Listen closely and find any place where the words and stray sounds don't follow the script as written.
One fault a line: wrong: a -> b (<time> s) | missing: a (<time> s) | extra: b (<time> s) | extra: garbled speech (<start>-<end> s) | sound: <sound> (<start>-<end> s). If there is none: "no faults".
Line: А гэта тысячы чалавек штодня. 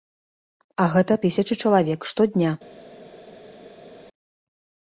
no faults